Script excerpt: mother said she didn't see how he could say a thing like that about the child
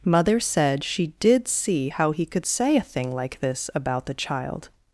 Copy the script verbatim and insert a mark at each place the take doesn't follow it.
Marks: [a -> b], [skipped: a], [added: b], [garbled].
mother said she [didn't -> did] see how he could say a thing like [that -> this] about the child